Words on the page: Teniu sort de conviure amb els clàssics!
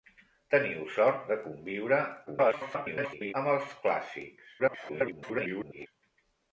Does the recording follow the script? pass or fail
fail